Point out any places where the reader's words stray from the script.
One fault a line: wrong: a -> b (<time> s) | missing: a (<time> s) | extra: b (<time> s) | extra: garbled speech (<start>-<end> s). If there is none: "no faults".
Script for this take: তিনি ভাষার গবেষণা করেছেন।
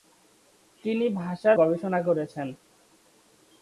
no faults